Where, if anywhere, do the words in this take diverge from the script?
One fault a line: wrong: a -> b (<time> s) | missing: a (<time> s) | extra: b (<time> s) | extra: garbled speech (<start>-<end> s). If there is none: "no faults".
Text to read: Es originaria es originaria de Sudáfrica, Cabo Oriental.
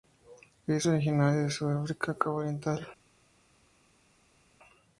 missing: es originaria (1.4 s)